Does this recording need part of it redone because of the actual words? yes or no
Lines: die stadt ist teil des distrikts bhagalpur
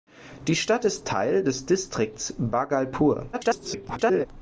yes